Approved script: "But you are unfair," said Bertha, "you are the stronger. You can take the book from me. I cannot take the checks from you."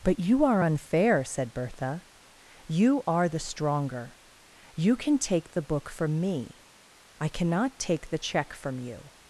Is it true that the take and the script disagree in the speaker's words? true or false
true